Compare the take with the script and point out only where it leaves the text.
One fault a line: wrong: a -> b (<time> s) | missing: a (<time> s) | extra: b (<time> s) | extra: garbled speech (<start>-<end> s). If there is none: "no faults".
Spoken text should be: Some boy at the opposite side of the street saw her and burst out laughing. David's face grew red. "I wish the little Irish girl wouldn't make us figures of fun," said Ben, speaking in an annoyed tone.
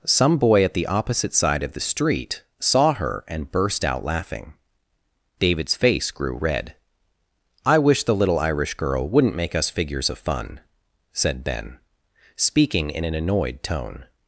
no faults